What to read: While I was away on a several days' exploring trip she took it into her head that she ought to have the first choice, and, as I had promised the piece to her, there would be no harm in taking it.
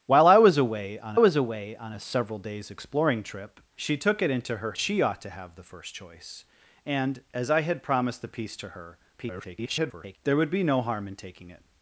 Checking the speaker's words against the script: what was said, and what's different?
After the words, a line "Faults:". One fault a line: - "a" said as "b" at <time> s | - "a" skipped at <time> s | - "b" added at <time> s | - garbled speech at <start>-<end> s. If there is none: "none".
While I was away on was away on a several days' exploring trip she took it into her she ought to have the first choice, and, as I had promised the piece to her, [garbled] there would be no harm in taking it.
Faults:
- "was away on" added at 1.2 s
- "head that" skipped at 4.7 s
- garbled speech at 9.2-10.2 s